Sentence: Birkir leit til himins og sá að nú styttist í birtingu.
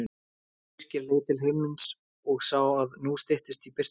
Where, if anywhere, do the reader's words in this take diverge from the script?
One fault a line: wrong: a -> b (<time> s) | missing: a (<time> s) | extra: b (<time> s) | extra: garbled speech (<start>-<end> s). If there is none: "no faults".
no faults